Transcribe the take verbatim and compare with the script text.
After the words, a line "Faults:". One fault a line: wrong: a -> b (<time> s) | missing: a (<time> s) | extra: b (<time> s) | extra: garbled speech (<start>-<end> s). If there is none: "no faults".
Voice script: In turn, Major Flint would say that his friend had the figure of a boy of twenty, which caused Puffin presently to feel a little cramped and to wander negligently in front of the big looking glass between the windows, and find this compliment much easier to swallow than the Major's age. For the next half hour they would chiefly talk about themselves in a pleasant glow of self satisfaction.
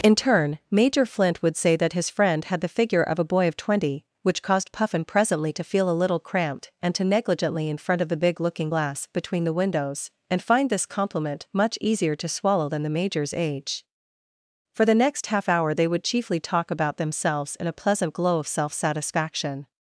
In turn, Major Flint would say that his friend had the figure of a boy of twenty, which caused Puffin presently to feel a little cramped and to negligently in front of the big looking glass between the windows, and find this compliment much easier to swallow than the Major's age. For the next half hour they would chiefly talk about themselves in a pleasant glow of self satisfaction.
Faults:
missing: wander (7.0 s)